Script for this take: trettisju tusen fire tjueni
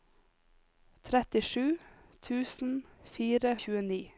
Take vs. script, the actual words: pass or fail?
pass